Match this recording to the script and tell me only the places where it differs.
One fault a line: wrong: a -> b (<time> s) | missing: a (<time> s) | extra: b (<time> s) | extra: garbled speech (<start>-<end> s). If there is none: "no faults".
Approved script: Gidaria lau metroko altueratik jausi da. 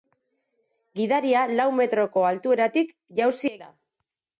no faults